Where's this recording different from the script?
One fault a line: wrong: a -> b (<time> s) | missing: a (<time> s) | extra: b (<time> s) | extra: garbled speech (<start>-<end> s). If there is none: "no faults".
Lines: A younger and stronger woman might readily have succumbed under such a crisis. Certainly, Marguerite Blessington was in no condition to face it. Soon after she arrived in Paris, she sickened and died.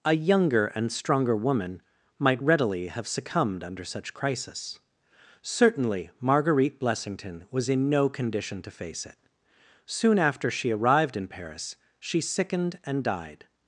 missing: a (4.1 s)